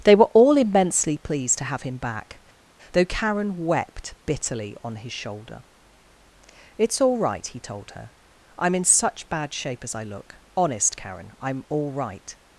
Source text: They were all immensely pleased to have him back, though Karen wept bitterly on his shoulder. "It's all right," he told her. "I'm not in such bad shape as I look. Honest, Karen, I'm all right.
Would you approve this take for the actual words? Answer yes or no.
no